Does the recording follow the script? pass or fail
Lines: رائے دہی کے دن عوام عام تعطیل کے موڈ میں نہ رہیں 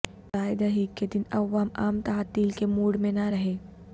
pass